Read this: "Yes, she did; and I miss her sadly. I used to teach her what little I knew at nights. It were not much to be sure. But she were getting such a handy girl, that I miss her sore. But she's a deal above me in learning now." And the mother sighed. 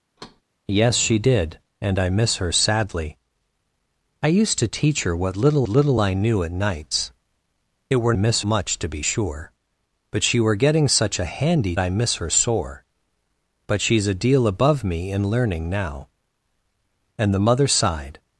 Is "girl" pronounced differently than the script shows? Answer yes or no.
yes